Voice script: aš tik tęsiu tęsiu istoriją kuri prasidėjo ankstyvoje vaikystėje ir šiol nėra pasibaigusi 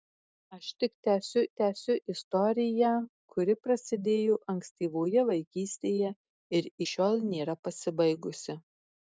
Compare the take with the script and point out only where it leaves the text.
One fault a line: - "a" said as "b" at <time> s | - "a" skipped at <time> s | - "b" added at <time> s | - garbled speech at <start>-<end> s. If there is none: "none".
none